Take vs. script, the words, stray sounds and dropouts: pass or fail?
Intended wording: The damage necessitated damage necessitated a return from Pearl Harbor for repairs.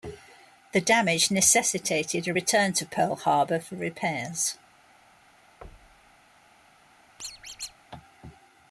fail